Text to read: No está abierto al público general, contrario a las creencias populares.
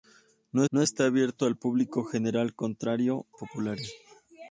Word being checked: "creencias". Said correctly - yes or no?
no